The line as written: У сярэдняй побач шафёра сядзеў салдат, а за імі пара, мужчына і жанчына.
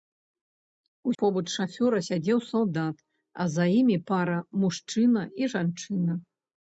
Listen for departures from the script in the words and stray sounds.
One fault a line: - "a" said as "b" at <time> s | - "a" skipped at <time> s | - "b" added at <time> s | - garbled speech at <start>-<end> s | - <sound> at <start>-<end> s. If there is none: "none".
- "сярэдняй" skipped at 1.1 s